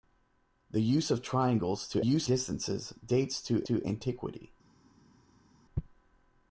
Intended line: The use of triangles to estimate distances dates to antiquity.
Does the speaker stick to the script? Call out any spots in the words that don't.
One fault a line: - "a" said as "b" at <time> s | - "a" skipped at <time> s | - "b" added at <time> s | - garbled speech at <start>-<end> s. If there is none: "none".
- "estimate" said as "use" at 2.0 s
- "to" added at 3.6 s